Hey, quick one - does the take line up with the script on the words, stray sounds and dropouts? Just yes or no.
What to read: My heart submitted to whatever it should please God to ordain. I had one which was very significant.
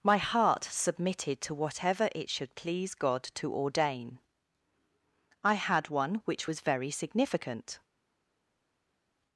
yes